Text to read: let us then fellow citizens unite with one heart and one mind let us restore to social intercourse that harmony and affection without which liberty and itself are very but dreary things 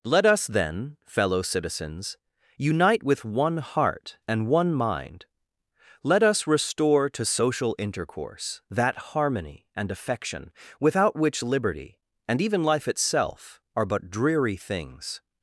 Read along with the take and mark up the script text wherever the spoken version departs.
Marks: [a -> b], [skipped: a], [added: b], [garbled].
let us then fellow citizens unite with one heart and one mind let us restore to social intercourse that harmony and affection without which liberty and [added: even life] itself are [skipped: very] but dreary things